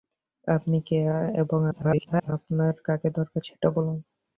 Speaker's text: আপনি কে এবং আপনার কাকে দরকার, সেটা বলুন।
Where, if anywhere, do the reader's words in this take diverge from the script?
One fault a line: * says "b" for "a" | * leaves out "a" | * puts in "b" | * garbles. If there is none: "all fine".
* garbles